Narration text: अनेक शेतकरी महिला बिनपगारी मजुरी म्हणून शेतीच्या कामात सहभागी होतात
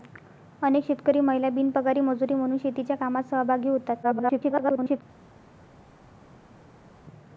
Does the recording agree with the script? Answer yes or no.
no